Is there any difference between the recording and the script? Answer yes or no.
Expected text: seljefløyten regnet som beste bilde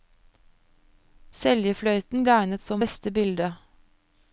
no